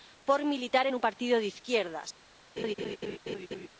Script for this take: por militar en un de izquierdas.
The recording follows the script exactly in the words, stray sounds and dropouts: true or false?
false